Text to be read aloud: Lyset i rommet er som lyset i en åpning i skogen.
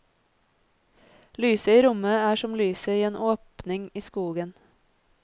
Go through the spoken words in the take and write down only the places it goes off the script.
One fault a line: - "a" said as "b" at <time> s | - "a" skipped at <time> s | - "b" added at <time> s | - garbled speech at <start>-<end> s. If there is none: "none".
none